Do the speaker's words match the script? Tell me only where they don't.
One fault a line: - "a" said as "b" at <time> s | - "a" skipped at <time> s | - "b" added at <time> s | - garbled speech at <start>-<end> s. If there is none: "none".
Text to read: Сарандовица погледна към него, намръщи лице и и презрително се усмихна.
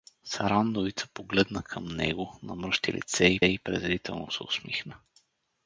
none